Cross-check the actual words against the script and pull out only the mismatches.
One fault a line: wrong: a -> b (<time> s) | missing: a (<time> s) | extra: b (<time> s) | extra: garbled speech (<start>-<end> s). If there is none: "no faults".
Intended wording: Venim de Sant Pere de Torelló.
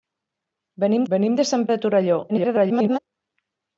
extra: venim (1.1 s)
missing: Pere (1.7 s)
extra: garbled speech (2.3-3.0 s)